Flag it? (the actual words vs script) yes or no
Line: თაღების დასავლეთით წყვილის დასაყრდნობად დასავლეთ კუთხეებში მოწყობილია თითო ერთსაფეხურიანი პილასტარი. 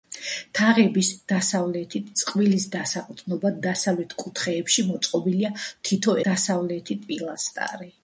yes